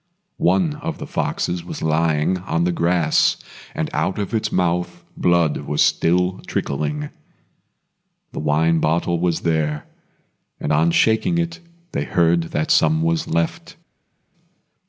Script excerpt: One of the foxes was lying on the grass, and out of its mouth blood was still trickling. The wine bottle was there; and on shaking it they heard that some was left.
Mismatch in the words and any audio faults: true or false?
false